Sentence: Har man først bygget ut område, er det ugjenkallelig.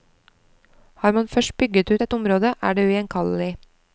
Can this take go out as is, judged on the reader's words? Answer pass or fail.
fail